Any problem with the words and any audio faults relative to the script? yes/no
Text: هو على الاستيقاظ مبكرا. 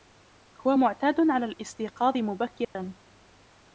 yes